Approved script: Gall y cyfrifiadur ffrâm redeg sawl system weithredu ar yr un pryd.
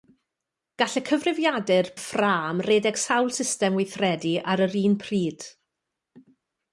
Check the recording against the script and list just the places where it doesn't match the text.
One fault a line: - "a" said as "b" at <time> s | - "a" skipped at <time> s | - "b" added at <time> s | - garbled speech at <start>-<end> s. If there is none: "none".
none